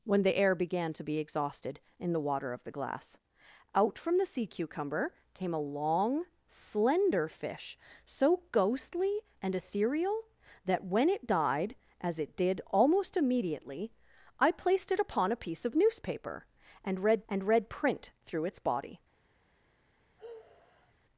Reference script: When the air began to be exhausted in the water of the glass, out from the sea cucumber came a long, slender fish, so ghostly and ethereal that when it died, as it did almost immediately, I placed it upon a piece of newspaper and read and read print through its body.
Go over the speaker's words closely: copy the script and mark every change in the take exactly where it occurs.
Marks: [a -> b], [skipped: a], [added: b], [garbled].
When the air began to be exhausted in the water of the glass, out from the sea cucumber came a long, slender fish, so ghostly and ethereal that when it died, as it did almost immediately, I placed it upon a piece of newspaper and read and read print through its body.